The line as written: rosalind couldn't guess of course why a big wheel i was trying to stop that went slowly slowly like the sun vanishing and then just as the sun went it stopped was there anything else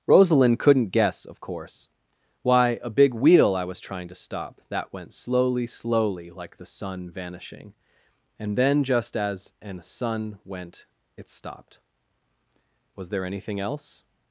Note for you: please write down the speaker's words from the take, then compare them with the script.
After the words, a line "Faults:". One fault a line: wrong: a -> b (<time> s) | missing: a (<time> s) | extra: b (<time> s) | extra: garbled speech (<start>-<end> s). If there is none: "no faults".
rosalind couldn't guess of course why a big wheel i was trying to stop that went slowly slowly like the sun vanishing and then just as an sun went it stopped was there anything else
Faults:
wrong: the -> an (9.6 s)